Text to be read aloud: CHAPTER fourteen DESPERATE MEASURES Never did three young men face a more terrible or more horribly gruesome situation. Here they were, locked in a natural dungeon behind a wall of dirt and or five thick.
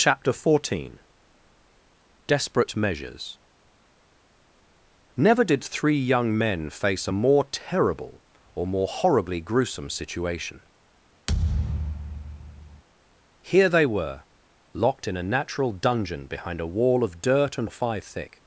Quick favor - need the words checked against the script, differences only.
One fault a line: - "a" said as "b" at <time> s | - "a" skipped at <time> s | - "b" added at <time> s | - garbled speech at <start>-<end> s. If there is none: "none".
none